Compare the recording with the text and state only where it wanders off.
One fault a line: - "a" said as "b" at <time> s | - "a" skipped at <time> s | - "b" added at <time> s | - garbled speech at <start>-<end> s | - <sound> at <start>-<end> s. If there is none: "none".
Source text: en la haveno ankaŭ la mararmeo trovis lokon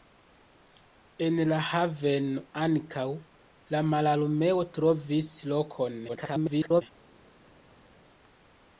- garbled speech at 6.1-6.8 s